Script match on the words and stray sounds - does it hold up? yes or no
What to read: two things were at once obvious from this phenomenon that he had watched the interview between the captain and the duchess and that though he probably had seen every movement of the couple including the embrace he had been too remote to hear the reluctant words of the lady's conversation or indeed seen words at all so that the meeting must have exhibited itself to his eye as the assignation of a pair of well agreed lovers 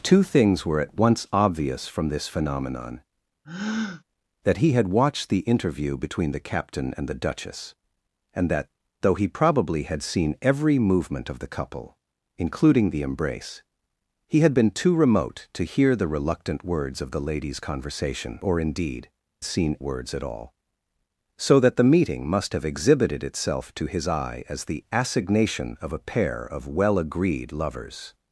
no